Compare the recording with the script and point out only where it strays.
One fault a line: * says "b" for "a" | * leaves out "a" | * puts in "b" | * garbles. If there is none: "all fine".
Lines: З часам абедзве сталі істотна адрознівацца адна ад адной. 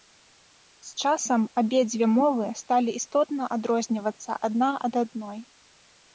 * puts in "мовы"